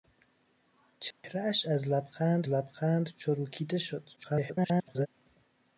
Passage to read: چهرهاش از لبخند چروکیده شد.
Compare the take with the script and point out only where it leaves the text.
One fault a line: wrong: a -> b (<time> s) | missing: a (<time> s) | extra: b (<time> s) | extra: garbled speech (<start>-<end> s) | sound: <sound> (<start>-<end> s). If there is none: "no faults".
sound: dropout (1.1-1.2 s)
extra: لبخند (2.5 s)
extra: garbled speech (4.2-5.1 s)